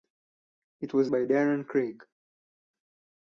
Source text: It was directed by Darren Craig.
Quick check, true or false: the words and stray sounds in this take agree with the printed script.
false